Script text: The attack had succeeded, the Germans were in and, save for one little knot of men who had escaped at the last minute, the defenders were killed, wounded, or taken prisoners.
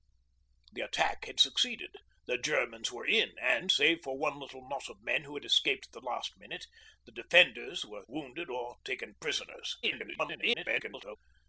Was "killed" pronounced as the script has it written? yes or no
no